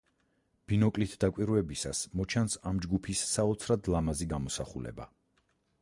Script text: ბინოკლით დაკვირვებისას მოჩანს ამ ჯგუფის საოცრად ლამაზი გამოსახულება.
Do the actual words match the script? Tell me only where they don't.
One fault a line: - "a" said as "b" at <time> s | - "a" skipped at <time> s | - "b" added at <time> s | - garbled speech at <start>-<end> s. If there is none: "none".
none